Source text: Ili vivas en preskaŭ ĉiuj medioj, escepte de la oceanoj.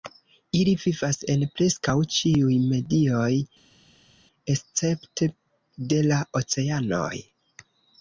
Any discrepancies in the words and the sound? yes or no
no